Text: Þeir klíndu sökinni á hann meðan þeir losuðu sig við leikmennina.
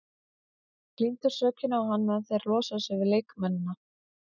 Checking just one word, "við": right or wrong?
right